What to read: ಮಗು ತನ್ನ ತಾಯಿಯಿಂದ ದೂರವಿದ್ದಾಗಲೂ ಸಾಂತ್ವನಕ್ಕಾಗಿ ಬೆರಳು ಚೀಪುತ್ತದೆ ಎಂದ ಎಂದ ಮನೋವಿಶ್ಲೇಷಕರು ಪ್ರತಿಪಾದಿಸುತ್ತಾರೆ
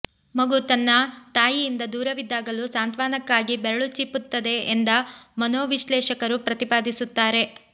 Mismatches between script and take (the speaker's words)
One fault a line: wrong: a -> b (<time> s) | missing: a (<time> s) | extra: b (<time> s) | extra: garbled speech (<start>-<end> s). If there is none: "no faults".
missing: ಎಂದ (4.9 s)